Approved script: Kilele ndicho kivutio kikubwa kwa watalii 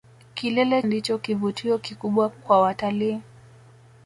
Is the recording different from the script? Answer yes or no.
no